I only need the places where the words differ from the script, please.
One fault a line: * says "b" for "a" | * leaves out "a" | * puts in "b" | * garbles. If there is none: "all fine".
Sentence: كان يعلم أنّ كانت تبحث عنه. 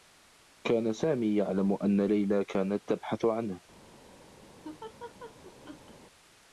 * puts in "سامي"
* puts in "ليلى"